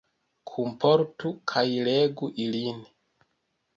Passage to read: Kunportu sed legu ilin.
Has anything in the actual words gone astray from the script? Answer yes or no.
yes